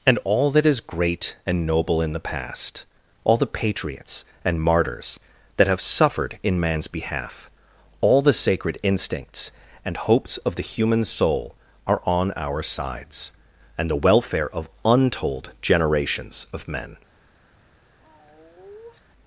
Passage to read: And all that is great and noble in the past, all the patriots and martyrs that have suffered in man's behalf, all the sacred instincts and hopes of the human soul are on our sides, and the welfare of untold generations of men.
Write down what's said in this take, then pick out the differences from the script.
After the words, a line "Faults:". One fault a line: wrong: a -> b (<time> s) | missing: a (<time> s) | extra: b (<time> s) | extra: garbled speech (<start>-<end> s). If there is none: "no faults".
And all that is great and noble in the past, all the patriots and martyrs that have suffered in man's behalf, all the sacred instincts and hopes of the human soul are on our sides, and the welfare of untold generations of men.
Faults:
no faults